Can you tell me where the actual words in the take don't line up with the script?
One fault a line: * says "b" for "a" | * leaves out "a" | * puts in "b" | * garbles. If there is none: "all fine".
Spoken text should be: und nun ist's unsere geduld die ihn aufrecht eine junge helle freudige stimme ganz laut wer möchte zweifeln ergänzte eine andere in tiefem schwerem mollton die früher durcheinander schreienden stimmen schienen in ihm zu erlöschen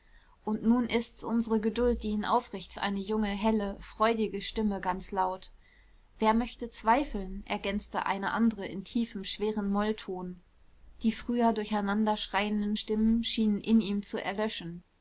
all fine